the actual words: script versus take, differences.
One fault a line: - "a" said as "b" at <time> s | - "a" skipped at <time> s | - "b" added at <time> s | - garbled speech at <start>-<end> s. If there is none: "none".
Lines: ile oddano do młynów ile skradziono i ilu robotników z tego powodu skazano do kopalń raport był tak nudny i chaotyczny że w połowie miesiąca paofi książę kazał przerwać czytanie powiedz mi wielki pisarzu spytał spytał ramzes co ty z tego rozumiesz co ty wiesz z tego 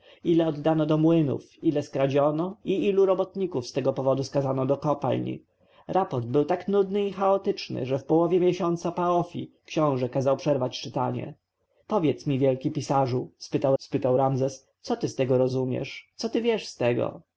none